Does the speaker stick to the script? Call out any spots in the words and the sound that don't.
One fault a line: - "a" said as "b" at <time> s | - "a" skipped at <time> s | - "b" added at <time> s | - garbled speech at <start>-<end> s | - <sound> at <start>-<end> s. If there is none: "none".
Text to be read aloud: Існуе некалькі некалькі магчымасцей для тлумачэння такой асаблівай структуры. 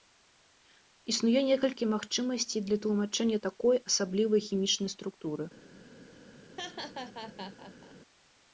- "некалькі" skipped at 1.9 s
- "хімічнай" added at 4.5 s
- laugh at 6.6-8.0 s